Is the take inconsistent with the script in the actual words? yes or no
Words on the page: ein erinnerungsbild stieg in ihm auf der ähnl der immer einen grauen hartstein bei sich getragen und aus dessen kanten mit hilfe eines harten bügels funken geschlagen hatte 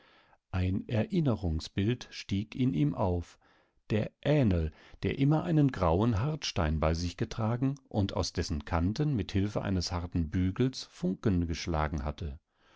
no